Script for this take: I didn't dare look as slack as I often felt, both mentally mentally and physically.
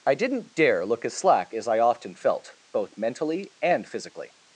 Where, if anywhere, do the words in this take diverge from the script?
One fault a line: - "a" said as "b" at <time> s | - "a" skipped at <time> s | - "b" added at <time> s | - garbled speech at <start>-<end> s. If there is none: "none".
- "mentally" skipped at 3.5 s